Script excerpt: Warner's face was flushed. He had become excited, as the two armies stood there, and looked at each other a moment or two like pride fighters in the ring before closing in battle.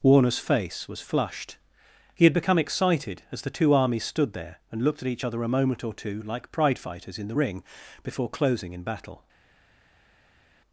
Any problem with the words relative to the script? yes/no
no